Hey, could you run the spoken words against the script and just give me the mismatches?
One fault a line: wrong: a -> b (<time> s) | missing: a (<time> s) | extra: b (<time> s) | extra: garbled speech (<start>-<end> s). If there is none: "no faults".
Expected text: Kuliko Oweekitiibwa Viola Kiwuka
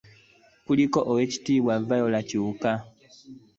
no faults